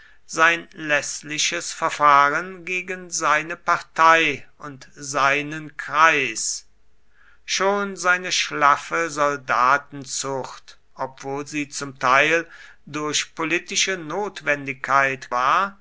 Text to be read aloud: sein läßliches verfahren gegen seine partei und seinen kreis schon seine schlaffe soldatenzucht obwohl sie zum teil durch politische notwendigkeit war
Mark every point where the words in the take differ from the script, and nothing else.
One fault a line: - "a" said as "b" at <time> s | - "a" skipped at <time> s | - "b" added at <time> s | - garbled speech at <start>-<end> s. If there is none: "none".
none